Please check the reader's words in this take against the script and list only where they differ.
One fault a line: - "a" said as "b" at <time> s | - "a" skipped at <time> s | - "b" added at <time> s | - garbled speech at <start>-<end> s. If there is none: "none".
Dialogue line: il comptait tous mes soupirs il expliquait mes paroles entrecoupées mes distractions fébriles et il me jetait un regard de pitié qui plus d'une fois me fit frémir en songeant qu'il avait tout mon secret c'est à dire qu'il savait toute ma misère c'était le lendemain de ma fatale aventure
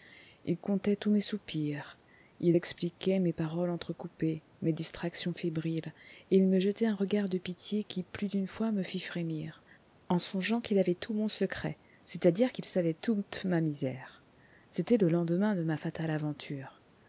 none